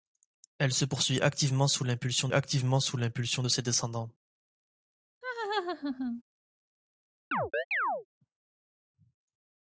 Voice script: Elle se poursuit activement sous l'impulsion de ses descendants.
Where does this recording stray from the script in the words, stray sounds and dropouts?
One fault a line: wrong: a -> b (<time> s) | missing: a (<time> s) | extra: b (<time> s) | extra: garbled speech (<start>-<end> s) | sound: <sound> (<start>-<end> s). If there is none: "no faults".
extra: activement sous l'impulsion (2.3 s)
sound: laugh (5.2-6.2 s)
sound: chirp (7.3-8.1 s)